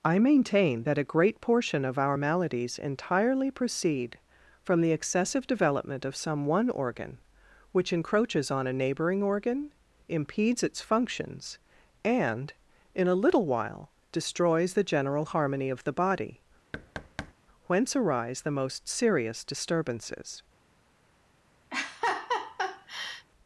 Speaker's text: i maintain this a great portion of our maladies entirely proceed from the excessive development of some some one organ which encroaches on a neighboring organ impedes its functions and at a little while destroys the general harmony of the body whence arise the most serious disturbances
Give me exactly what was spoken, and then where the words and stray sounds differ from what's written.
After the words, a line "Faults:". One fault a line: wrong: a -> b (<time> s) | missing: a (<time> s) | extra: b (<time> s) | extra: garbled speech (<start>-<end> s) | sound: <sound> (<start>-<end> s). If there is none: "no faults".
i maintain that a great portion of our maladies entirely proceed from the excessive development of some one organ which encroaches on a neighboring organ impedes its functions and in a little while destroys the general harmony of the body whence arise the most serious disturbances
Faults:
wrong: this -> that (0.8 s)
missing: some (6.5 s)
wrong: at -> in (13.0 s)
sound: thud (16.7-17.3 s)
sound: laugh (21.7-23.3 s)